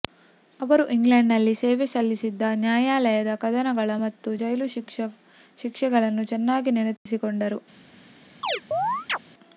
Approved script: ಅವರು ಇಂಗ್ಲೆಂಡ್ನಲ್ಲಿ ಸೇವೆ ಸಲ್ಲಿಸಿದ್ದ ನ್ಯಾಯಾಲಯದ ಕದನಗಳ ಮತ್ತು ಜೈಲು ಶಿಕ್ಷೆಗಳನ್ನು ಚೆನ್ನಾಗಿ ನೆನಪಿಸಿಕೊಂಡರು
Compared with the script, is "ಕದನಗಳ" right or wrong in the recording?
right